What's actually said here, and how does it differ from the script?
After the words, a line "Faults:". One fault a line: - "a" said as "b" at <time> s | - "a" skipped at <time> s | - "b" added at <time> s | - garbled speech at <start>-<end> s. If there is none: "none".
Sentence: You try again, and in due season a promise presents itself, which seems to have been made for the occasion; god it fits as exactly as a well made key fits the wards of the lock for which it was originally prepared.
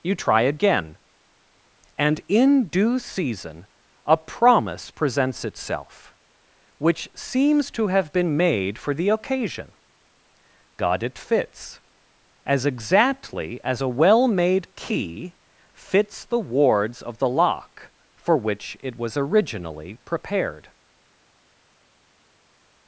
You try again, and in due season a promise presents itself, which seems to have been made for the occasion; god it fits as exactly as a well made key fits the wards of the lock for which it was originally prepared.
Faults:
none